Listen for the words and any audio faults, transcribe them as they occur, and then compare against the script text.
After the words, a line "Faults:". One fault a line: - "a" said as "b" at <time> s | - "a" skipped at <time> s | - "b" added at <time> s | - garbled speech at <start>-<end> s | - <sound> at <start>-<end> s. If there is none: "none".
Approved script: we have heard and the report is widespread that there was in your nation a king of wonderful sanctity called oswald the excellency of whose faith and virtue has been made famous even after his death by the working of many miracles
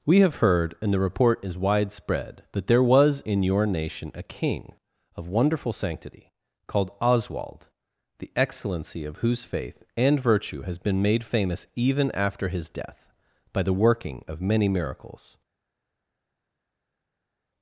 we have heard and the report is widespread that there was in your nation a king of wonderful sanctity called oswald the excellency of whose faith and virtue has been made famous even after his death by the working of many miracles
Faults:
none